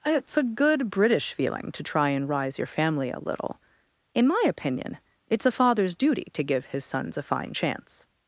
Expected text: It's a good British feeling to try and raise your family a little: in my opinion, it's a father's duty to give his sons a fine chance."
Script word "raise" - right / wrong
wrong